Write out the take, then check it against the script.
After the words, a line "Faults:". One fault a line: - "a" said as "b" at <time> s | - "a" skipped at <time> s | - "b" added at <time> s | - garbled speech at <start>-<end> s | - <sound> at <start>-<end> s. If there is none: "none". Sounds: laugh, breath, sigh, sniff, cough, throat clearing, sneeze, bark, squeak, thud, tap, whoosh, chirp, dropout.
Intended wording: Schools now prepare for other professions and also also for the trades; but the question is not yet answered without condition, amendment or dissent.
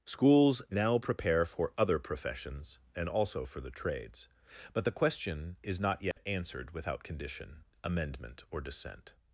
Schools now prepare for other professions and also for the trades; but the question is not yet answered without condition, amendment or dissent.
Faults:
- "also" skipped at 3.5 s
- dropout at 6.1-6.2 s